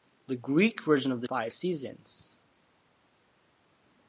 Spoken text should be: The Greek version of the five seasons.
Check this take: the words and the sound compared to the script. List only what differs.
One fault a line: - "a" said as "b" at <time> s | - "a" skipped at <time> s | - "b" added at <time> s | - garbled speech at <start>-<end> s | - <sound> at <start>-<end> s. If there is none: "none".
none